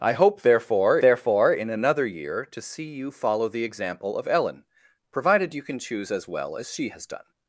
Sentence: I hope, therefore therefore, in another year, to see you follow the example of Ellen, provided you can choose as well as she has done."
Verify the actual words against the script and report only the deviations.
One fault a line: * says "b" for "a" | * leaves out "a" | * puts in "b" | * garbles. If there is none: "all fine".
all fine